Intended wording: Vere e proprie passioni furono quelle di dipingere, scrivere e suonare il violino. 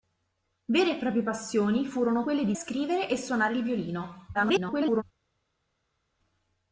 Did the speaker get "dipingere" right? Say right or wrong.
wrong